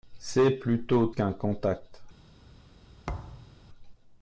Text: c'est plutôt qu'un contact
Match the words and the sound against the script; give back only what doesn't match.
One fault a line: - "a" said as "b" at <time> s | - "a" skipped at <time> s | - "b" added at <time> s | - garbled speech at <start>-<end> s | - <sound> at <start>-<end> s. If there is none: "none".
- thud at 3.1-3.6 s